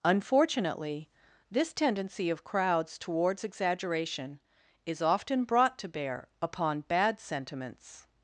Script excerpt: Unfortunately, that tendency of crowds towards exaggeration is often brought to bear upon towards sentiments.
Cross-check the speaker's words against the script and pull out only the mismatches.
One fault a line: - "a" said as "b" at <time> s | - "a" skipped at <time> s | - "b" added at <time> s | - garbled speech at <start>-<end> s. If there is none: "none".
- "that" said as "this" at 1.5 s
- "towards" said as "bad" at 6.9 s